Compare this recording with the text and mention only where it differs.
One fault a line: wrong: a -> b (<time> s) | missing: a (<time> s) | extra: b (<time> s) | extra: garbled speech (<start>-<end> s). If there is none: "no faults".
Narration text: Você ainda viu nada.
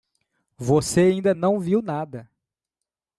extra: não (1.3 s)